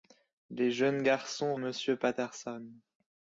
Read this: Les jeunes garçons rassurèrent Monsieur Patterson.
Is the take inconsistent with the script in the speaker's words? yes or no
yes